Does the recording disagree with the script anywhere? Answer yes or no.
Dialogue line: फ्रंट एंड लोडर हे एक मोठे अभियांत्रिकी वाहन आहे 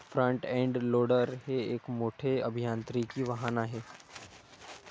no